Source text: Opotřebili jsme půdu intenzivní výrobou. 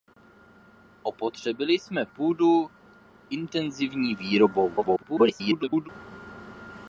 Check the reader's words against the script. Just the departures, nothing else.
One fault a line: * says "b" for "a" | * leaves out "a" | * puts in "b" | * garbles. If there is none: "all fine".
* garbles